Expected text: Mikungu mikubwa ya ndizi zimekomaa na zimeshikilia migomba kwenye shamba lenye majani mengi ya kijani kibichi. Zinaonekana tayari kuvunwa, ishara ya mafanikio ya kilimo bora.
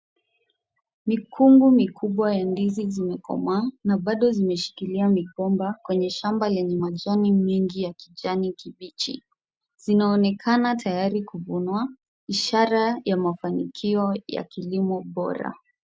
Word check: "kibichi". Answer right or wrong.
right